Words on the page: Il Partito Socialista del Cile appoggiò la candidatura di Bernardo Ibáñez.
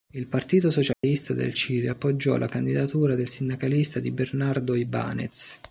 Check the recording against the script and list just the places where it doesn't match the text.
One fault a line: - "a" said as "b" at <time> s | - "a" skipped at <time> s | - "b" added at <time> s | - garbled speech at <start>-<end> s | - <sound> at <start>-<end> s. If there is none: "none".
- dropout at 0.9-1.0 s
- "del sindacalista" added at 3.2 s